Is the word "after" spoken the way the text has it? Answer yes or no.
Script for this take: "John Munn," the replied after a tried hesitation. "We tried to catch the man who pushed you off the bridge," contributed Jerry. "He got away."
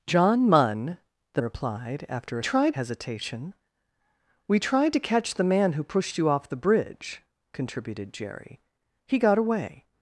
yes